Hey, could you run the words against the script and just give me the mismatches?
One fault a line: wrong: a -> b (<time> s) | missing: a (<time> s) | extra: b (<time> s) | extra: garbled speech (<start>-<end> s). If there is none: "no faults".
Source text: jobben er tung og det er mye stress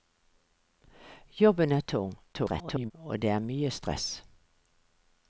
extra: garbled speech (2.3-2.9 s)